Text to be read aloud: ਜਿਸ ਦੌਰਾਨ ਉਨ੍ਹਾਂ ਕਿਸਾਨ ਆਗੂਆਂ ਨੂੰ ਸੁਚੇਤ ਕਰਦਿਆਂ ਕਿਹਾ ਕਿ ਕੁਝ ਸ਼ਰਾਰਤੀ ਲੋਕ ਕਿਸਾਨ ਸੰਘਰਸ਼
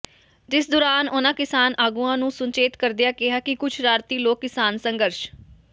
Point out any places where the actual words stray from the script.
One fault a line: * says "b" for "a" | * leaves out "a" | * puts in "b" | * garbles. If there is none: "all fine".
all fine